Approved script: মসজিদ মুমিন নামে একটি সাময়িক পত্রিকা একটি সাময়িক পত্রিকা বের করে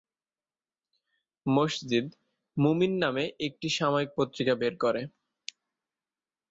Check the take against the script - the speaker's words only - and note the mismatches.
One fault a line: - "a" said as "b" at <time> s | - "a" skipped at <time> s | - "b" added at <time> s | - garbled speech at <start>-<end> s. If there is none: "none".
- "একটি সাময়িক পত্রিকা" skipped at 4.5 s